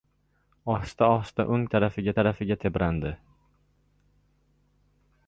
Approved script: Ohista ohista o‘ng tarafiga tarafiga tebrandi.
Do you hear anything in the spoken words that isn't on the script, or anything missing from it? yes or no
no